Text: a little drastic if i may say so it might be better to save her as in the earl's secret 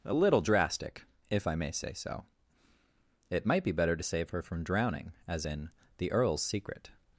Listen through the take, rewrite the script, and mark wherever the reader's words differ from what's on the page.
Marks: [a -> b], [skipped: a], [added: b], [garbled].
a little drastic if i may say so it might be better to save her [added: from drowning] as in the earl's secret